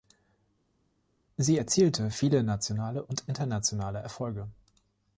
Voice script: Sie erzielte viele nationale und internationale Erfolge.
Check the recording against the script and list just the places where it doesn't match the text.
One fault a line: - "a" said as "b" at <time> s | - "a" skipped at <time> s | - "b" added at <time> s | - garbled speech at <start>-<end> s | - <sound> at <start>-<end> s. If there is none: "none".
none